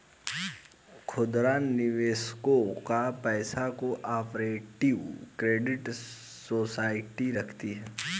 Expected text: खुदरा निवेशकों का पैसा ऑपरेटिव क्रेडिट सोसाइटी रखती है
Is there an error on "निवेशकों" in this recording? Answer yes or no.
no